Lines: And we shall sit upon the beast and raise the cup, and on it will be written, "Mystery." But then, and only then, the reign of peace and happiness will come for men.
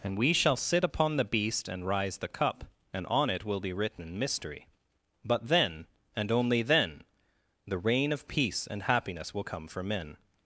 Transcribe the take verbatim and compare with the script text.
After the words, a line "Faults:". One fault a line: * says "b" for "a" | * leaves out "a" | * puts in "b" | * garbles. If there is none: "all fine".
And we shall sit upon the beast and rise the cup, and on it will be written, "Mystery." But then, and only then, the reign of peace and happiness will come for men.
Faults:
* says "rise" for "raise"